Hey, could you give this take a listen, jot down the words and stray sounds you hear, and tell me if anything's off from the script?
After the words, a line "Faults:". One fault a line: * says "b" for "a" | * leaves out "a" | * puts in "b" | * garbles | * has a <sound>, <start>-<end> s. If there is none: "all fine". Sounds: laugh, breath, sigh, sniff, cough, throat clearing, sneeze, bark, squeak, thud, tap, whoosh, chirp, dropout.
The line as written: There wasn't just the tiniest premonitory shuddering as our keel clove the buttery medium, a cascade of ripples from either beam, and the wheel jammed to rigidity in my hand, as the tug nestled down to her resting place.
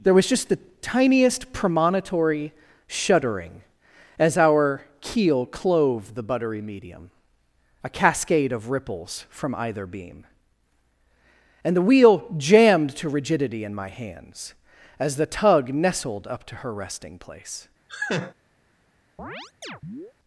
There was just the tiniest premonitory shuddering as our keel clove the buttery medium, a cascade of ripples from either beam, and the wheel jammed to rigidity in my hands, as the tug nestled up to her resting place.
Faults:
* says "was" for "wasn't"
* says "hands" for "hand"
* says "up" for "down"
* has a laugh, 17.9-18.3 s
* has a chirp, 19.2-20.1 s